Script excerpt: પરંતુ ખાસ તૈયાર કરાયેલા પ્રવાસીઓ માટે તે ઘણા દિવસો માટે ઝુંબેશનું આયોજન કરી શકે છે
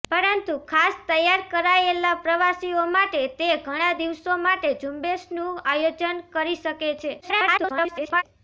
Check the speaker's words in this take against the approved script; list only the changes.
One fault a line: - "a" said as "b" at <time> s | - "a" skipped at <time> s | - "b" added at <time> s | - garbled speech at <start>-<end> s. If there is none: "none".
- garbled speech at 7.2-8.2 s